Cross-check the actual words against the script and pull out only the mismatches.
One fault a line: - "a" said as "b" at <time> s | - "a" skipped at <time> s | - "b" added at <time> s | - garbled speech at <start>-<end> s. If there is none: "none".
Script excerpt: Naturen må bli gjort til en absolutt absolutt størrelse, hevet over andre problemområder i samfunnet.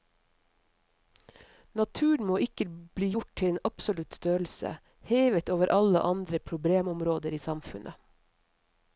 - "ikke" added at 2.5 s
- "absolutt" skipped at 4.2 s
- "alle" added at 5.8 s